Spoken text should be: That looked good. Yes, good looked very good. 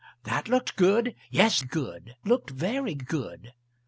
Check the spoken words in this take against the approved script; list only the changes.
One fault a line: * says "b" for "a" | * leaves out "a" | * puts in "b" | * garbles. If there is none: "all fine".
all fine